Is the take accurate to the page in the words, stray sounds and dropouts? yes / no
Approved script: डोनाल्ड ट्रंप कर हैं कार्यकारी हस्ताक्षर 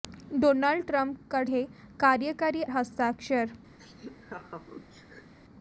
no